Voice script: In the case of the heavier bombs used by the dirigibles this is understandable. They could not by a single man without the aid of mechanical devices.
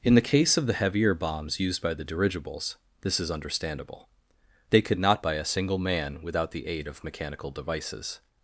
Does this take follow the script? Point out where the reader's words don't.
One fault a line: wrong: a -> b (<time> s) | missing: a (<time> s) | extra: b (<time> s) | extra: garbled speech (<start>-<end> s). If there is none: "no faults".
no faults